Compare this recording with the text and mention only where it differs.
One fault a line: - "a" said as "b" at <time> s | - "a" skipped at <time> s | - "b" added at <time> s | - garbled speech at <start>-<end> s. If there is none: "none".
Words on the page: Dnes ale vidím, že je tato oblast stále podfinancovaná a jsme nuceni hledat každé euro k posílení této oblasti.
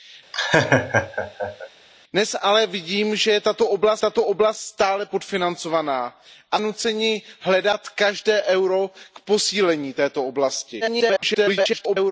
- "tato oblast" added at 4.0 s
- "jsme" skipped at 6.6 s
- garbled speech at 10.8-12.1 s